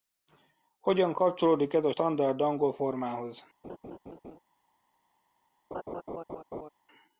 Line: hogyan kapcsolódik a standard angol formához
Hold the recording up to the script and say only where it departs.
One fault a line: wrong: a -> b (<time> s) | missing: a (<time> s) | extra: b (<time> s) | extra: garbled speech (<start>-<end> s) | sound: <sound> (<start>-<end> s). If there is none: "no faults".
extra: ez (1.7 s)
sound: laugh (3.6-4.4 s)
sound: laugh (5.7-6.7 s)